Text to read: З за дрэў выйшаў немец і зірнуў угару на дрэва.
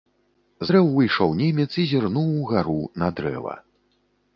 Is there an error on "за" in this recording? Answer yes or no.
yes